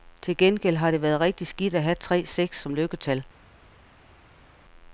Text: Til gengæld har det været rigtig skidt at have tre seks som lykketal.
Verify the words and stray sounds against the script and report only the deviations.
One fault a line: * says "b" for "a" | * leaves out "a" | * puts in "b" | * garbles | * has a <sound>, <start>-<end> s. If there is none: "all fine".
all fine